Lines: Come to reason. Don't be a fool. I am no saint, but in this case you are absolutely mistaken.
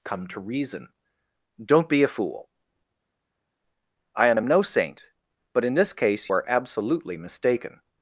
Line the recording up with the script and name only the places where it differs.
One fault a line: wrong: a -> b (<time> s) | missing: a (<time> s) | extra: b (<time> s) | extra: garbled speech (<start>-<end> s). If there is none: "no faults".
extra: am (4.3 s)
missing: you (6.3 s)